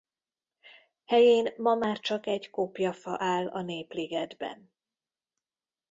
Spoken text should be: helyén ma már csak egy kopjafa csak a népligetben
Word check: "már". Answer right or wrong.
right